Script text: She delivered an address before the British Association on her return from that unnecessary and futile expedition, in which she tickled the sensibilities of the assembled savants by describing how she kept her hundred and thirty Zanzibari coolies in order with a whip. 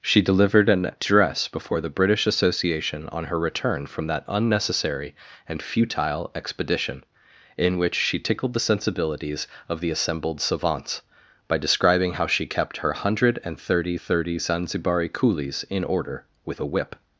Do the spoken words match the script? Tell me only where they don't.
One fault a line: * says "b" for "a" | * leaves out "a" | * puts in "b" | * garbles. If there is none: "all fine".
* puts in "thirty"